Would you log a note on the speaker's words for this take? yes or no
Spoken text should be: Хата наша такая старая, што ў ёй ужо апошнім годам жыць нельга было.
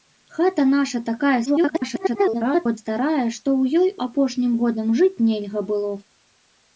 yes